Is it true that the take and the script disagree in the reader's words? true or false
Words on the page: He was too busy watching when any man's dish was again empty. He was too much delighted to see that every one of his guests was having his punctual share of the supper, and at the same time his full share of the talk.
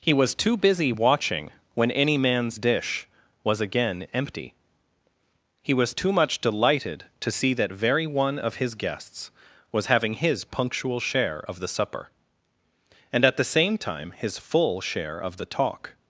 true